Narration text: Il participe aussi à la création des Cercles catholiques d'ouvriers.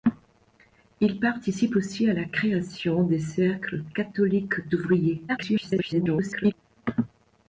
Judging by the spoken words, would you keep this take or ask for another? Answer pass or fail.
fail